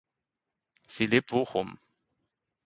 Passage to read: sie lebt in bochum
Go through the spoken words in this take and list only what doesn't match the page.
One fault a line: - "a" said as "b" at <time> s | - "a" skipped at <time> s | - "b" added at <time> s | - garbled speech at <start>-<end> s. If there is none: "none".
- "in" skipped at 1.3 s